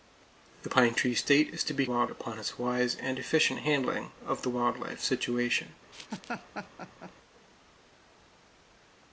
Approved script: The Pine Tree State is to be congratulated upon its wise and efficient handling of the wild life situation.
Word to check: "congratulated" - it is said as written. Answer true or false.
false